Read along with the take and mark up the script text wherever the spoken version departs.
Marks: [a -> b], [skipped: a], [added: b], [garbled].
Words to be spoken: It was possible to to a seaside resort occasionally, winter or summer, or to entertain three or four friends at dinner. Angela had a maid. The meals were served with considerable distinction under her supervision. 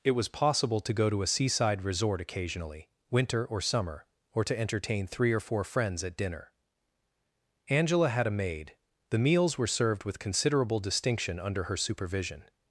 It was possible to [added: go] to a seaside resort occasionally, winter or summer, or to entertain three or four friends at dinner. Angela had a maid. The meals were served with considerable distinction under her supervision.